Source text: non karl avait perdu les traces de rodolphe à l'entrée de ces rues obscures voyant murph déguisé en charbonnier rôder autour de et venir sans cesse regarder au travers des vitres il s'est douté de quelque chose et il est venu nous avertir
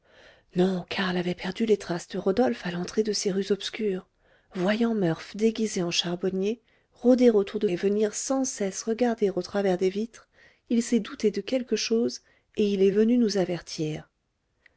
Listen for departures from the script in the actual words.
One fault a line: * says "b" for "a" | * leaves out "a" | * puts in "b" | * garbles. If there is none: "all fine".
all fine